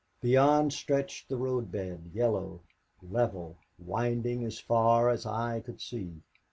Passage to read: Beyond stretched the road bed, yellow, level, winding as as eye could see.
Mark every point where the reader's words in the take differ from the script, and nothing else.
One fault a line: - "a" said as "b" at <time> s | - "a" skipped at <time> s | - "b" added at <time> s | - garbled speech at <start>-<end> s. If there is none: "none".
- "far" added at 4.6 s